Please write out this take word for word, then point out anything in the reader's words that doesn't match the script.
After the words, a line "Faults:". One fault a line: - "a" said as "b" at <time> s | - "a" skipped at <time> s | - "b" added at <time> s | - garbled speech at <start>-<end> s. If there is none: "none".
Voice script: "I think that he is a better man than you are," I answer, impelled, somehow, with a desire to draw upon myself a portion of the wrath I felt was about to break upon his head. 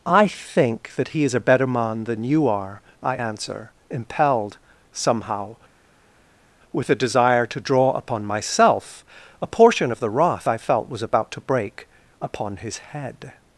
"I think that he is a better man than you are," I answer, impelled, somehow, with a desire to draw upon myself a portion of the wrath I felt was about to break upon his head.
Faults:
none